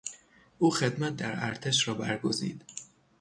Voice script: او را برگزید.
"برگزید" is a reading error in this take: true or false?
false